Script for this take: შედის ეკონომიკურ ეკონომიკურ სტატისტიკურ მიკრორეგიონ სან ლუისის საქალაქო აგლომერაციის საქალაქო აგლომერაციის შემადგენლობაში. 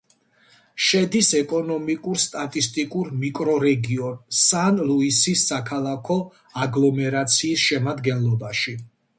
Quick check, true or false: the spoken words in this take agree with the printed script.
false